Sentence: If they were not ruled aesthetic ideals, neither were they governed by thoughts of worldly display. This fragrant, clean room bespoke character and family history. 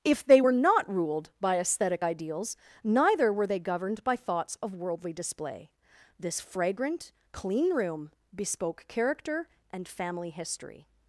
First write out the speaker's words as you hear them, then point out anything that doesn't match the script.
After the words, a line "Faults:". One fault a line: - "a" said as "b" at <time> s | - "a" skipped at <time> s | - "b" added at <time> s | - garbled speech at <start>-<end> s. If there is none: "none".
If they were not ruled by aesthetic ideals, neither were they governed by thoughts of worldly display. This fragrant, clean room bespoke character and family history.
Faults:
- "by" added at 1.4 s